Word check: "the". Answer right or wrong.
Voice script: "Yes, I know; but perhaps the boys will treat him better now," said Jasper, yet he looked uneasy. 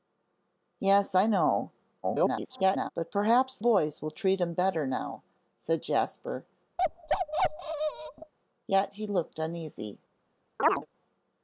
wrong